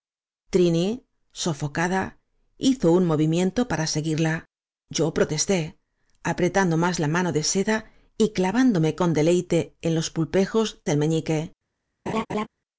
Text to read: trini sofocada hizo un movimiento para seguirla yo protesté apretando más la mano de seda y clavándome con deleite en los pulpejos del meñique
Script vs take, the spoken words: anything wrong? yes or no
no